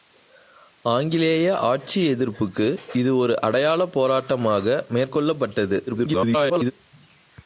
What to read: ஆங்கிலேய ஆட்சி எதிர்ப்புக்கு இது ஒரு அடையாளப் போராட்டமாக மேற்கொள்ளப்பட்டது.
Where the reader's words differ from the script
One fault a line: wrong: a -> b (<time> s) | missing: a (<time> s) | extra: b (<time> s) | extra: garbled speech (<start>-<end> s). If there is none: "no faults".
extra: garbled speech (5.9-6.7 s)